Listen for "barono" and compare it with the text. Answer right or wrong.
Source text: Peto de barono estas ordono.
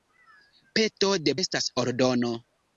wrong